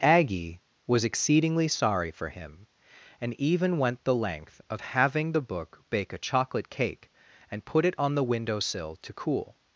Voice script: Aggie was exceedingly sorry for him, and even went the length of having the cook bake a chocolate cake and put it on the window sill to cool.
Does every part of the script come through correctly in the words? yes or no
no